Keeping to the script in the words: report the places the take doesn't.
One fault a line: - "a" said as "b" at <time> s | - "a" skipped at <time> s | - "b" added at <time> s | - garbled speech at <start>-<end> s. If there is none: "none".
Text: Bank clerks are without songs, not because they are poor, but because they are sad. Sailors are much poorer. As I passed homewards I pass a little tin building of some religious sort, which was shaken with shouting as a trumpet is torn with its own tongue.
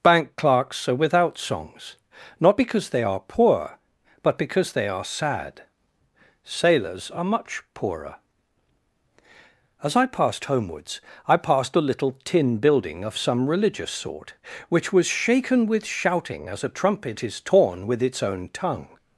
- "pass" said as "passed" at 11.4 s